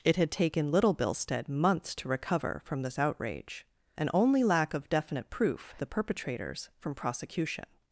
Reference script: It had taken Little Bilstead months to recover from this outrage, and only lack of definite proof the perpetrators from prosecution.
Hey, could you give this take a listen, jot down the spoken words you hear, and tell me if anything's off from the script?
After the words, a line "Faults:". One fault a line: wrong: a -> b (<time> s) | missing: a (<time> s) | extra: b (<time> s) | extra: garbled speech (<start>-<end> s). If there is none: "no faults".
It had taken Little Bilstead months to recover from this outrage, and only lack of definite proof the perpetrators from prosecution.
Faults:
no faults